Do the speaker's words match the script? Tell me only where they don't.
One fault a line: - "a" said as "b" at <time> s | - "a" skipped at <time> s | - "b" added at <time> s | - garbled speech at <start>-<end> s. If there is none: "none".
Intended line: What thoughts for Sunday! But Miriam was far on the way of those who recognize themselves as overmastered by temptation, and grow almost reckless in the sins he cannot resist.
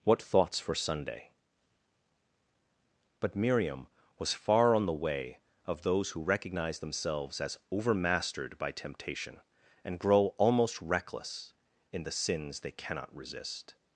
- "he" said as "they" at 12.6 s